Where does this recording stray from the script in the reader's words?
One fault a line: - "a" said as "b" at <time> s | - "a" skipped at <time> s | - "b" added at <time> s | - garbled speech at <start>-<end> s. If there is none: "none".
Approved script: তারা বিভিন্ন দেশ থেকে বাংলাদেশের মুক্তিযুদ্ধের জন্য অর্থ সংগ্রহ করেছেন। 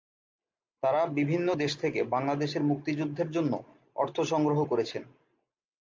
none